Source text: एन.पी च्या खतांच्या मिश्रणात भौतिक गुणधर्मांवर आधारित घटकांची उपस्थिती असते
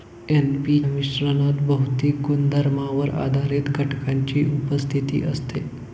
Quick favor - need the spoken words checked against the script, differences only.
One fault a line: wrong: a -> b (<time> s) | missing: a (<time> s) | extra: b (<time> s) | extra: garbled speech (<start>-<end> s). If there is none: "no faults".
missing: च्या खतांच्या (0.8 s)